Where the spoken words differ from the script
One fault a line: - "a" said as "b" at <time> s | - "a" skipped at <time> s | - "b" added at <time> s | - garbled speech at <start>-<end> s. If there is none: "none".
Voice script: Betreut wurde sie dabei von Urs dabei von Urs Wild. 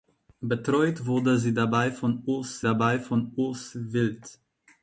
none